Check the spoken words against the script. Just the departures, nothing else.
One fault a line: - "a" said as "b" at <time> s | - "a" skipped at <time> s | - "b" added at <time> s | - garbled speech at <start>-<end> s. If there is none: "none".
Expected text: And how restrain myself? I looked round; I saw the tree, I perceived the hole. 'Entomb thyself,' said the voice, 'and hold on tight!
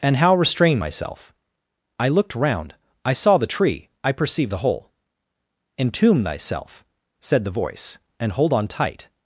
none